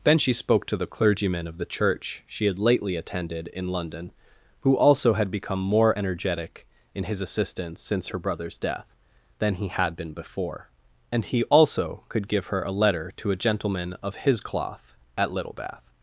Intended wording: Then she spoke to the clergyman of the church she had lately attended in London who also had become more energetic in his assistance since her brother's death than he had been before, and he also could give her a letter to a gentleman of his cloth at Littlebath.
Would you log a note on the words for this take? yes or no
no